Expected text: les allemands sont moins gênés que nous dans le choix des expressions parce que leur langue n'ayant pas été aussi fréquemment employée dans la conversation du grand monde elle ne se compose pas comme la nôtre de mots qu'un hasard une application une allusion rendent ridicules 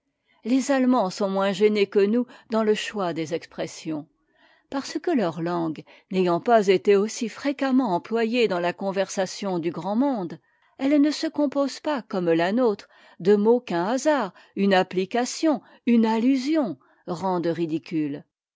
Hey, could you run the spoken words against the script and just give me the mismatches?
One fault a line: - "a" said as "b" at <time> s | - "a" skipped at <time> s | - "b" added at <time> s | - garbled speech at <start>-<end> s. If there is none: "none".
none